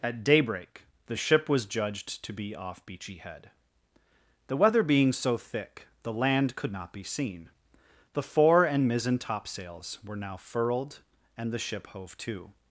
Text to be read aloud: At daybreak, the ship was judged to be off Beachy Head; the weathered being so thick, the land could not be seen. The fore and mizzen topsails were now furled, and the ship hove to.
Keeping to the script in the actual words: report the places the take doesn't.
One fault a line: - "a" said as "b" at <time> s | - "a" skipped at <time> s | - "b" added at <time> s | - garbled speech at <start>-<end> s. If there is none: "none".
- "weathered" said as "weather" at 4.6 s